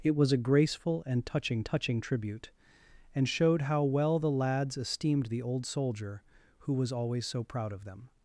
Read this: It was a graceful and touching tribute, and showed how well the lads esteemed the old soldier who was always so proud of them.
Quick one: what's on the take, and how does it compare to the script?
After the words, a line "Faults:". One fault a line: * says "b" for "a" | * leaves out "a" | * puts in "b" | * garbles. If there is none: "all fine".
It was a graceful and touching touching tribute, and showed how well the lads esteemed the old soldier who was always so proud of them.
Faults:
* puts in "touching"